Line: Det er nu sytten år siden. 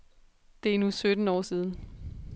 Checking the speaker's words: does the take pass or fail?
pass